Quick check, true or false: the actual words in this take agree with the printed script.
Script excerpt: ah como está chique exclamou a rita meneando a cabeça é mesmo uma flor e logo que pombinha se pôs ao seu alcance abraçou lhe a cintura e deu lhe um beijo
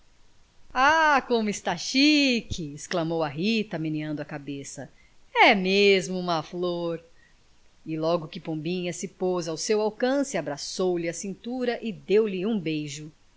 true